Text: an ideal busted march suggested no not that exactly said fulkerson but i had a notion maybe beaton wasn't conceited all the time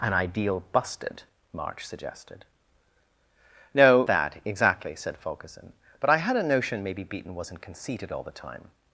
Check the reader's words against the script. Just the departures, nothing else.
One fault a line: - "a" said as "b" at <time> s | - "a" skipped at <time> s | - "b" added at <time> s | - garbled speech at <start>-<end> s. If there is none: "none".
- "not" skipped at 4.0 s